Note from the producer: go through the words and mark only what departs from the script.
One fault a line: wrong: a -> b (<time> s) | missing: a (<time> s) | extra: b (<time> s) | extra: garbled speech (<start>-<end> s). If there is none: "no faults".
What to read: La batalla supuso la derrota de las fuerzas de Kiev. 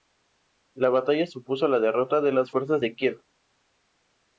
no faults